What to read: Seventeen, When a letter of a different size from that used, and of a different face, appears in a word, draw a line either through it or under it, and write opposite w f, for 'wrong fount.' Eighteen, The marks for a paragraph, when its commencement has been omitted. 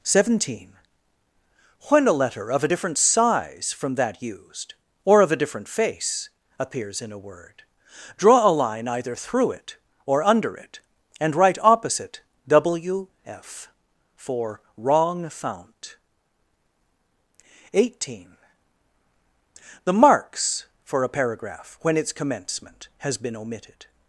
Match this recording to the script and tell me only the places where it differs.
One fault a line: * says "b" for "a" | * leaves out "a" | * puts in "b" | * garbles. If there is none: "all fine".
* says "or" for "and"